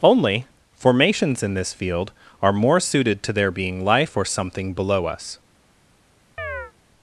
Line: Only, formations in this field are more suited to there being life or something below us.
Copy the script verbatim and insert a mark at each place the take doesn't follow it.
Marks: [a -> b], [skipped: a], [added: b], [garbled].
Only, formations in this field are more suited to there being life or something below us.